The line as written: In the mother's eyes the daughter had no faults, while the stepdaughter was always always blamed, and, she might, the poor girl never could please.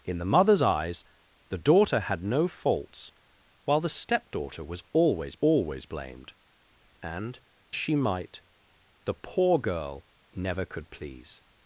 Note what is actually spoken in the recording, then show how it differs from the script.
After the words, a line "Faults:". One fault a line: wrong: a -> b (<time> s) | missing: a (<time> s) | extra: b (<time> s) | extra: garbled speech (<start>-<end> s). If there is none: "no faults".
In the mother's eyes the daughter had no faults, while the stepdaughter was always always blamed, and, she might, the poor girl never could please.
Faults:
no faults